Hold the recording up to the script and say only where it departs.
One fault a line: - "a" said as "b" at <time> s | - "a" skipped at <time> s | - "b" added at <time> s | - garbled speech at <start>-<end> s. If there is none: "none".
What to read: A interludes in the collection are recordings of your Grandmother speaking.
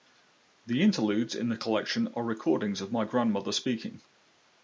- "A" said as "The" at 0.7 s
- "your" said as "my" at 2.9 s